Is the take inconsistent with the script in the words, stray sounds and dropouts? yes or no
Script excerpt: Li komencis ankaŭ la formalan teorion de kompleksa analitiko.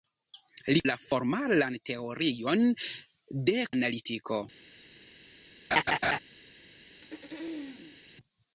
yes